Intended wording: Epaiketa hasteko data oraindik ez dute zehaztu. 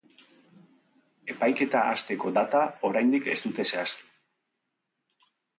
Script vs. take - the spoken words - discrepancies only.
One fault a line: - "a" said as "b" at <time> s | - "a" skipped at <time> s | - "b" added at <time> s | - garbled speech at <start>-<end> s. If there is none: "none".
none